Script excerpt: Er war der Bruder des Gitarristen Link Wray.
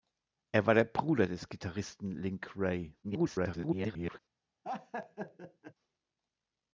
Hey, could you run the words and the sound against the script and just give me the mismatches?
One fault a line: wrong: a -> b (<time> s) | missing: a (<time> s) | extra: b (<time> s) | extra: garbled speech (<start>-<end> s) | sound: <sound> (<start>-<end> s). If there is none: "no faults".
extra: garbled speech (3.0-4.2 s)
sound: laugh (4.6-5.7 s)